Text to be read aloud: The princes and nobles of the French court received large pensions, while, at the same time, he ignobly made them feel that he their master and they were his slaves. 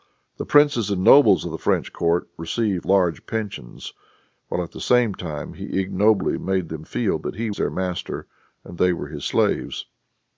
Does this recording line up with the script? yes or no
yes